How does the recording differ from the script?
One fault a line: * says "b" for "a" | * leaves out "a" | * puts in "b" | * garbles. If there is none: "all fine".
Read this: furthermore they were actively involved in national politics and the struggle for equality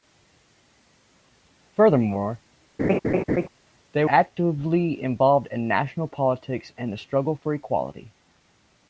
* leaves out "were"